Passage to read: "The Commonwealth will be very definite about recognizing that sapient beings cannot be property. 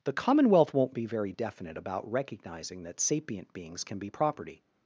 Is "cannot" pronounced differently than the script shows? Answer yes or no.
yes